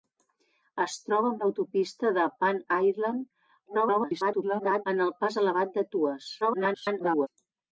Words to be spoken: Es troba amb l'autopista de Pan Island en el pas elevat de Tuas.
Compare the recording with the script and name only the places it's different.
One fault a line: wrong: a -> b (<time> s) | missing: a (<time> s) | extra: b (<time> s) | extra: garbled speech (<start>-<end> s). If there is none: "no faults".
extra: garbled speech (3.7-4.9 s)
extra: garbled speech (6.4-7.3 s)